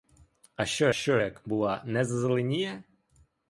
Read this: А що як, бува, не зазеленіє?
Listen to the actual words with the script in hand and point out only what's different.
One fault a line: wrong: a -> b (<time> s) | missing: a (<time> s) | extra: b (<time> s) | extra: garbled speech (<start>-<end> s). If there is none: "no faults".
extra: що (0.9 s)